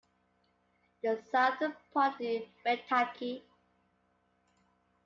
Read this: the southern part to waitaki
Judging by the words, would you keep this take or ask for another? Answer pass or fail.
pass